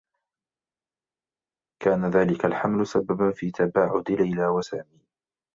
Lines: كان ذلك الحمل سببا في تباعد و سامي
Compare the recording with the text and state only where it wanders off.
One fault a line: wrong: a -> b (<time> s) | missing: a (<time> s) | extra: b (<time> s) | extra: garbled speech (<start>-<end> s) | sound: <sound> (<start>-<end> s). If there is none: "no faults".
extra: ليلى (4.1 s)